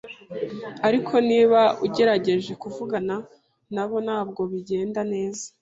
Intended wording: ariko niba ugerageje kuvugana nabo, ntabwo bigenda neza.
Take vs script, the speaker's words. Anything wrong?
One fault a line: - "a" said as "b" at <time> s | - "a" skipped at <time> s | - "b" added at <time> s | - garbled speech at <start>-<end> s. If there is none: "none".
none